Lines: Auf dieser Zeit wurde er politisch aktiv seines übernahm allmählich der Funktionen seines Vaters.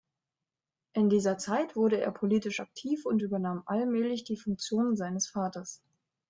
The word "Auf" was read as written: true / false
false